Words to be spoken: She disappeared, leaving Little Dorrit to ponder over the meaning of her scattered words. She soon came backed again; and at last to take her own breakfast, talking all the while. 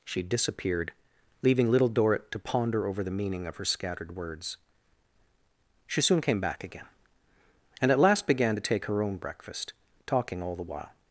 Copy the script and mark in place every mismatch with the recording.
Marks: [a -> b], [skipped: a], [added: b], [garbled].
She disappeared, leaving Little Dorrit to ponder over the meaning of her scattered words. She soon came [backed -> back] again; and at last [added: began] to take her own breakfast, talking all the while.